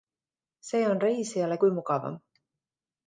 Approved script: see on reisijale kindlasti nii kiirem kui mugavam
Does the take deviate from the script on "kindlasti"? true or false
true